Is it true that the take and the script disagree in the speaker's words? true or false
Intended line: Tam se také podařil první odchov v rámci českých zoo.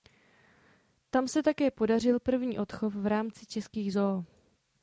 false